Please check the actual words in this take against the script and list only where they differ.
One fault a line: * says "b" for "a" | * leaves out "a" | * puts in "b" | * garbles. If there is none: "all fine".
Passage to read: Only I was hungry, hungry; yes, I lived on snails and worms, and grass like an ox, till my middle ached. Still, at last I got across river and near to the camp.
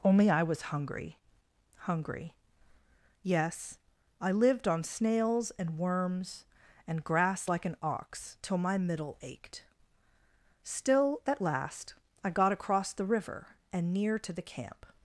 * puts in "the"